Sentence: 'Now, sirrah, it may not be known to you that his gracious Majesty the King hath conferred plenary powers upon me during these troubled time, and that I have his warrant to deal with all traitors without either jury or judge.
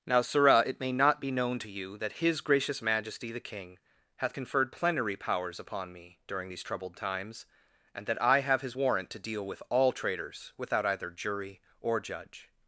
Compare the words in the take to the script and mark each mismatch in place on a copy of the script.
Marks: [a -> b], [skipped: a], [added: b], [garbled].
'Now, sirrah, it may not be known to you that his gracious Majesty the King hath conferred plenary powers upon me during these troubled [time, -> times] and that I have his warrant to deal with all traitors without either jury or judge.